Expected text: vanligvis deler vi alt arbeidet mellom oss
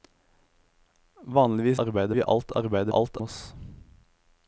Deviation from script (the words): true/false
true